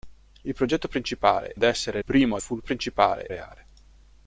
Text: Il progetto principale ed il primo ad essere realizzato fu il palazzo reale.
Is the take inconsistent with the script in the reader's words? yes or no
yes